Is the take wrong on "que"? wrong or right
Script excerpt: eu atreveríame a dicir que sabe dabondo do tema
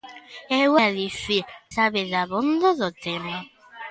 wrong